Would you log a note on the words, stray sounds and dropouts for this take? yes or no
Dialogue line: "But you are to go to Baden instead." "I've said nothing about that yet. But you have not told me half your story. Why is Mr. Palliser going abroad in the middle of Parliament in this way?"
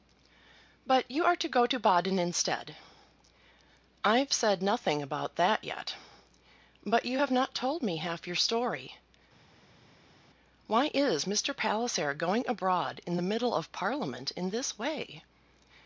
no